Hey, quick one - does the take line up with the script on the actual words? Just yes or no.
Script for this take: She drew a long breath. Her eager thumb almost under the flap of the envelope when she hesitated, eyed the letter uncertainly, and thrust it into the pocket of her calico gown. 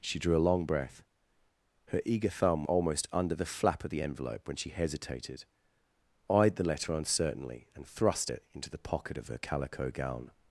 yes